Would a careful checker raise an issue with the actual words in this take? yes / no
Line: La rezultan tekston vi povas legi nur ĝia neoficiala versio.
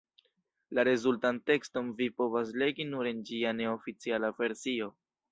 yes